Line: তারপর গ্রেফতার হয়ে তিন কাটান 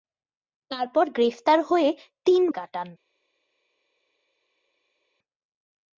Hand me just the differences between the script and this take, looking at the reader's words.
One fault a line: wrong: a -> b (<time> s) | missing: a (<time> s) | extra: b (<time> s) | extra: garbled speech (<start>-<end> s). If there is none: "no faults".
no faults